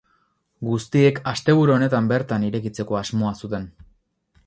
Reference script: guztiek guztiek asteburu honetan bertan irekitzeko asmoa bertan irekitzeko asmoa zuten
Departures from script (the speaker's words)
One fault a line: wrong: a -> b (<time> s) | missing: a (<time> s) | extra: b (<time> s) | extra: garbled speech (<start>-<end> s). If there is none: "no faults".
missing: guztiek (1.2 s)
missing: bertan irekitzeko asmoa (3.3 s)